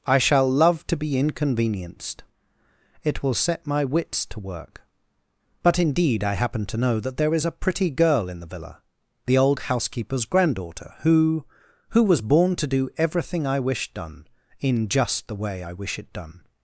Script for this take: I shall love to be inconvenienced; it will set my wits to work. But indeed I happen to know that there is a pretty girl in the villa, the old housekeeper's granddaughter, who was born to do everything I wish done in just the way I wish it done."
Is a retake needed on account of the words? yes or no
yes